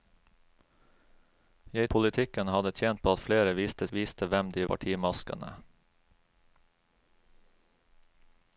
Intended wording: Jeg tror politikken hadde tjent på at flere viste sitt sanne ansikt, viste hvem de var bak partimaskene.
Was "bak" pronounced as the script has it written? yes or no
no